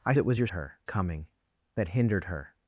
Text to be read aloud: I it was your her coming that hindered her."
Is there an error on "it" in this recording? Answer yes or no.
no